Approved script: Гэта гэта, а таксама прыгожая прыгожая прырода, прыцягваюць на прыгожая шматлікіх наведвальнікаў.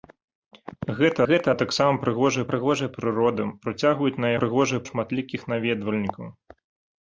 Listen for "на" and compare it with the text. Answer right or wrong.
right